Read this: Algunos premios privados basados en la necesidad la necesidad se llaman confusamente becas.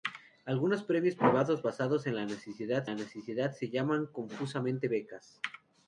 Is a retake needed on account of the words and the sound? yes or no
no